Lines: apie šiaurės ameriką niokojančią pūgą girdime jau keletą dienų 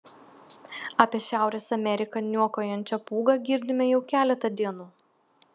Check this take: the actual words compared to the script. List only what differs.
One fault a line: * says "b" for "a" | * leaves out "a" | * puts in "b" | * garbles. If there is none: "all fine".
all fine